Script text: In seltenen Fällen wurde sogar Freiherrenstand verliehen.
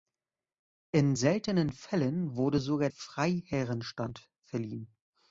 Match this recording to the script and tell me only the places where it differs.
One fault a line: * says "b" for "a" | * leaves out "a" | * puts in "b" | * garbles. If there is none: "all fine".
all fine